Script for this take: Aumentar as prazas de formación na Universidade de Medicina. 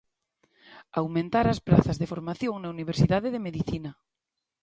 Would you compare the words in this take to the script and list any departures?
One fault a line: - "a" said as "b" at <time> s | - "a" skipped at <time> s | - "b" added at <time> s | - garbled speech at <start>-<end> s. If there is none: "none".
none